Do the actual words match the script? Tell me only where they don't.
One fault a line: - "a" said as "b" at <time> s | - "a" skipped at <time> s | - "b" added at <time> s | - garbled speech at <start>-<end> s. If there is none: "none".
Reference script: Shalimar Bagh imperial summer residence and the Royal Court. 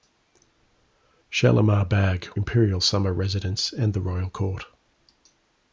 none